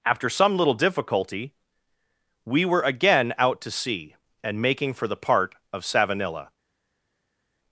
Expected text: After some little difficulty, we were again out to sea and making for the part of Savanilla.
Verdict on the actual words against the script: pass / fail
pass